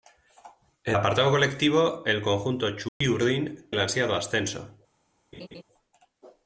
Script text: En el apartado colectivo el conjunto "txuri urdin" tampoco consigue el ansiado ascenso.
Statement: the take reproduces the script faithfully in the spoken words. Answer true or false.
false